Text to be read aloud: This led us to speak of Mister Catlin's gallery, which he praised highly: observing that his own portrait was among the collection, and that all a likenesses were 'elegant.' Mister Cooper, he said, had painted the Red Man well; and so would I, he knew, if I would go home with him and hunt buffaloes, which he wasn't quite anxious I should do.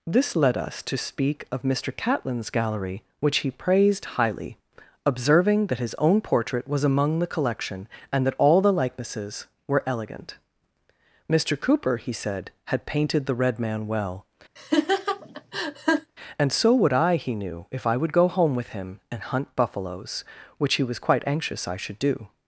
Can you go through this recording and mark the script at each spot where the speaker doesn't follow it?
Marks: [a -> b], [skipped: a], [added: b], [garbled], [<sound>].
This led us to speak of Mister Catlin's gallery, which he praised highly: observing that his own portrait was among the collection, and that all [a -> the] likenesses were 'elegant.' Mister Cooper, he said, had painted the Red Man well; [laugh] and so would I, he knew, if I would go home with him and hunt buffaloes, which he [wasn't -> was] quite anxious I should do.